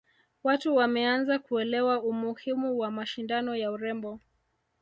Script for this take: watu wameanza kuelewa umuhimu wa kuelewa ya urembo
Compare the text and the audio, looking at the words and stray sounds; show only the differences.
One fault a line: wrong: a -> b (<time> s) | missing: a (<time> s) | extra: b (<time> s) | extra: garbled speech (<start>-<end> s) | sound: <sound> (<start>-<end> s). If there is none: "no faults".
wrong: kuelewa -> mashindano (2.9 s)